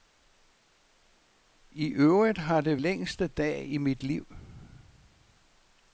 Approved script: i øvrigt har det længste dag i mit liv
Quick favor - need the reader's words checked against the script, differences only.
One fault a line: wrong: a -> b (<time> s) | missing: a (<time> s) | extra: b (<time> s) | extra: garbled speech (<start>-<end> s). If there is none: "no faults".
no faults